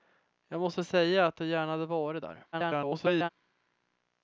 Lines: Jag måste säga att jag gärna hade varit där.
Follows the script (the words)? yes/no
no